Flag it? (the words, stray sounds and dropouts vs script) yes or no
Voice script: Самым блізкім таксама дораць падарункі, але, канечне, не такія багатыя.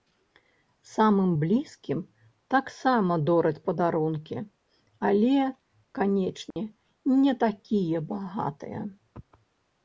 yes